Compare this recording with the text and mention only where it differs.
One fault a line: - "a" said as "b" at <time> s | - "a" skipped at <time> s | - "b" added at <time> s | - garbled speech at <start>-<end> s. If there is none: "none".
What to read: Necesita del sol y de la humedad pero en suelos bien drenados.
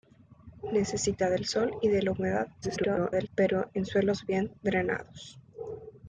- garbled speech at 2.6-3.3 s